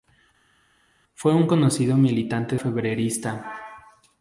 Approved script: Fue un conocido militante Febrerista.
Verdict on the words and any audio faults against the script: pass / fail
pass